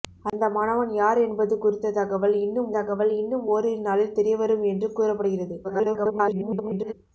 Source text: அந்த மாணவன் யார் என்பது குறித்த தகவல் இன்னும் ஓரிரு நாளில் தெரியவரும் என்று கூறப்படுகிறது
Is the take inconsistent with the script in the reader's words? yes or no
yes